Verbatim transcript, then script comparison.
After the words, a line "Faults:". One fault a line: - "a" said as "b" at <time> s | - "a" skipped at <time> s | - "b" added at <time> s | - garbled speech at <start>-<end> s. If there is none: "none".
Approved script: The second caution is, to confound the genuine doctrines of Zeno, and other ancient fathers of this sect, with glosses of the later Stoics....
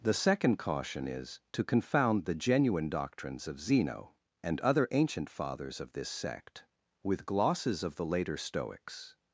The second caution is, to confound the genuine doctrines of Zeno, and other ancient fathers of this sect, with glosses of the later Stoics....
Faults:
none